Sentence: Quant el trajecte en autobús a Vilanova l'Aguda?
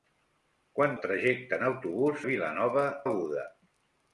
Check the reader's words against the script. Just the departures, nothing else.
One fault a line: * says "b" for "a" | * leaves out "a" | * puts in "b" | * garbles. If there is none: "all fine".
all fine